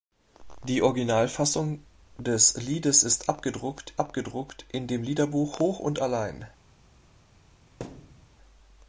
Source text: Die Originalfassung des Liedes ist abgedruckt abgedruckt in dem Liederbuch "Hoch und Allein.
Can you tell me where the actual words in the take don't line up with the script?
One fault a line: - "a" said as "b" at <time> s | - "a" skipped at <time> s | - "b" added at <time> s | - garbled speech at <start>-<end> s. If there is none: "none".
none